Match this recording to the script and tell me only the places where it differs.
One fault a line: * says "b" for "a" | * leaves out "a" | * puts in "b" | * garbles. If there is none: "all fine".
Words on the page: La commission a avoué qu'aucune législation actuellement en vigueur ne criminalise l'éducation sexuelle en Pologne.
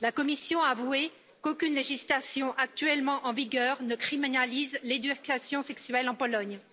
all fine